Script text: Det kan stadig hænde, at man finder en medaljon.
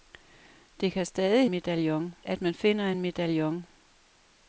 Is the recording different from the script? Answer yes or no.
yes